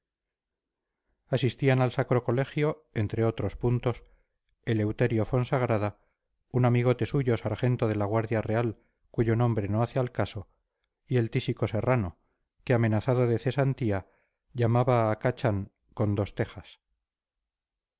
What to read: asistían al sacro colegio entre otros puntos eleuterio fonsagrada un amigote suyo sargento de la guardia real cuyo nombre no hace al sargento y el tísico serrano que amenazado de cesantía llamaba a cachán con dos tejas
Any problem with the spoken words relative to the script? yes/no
yes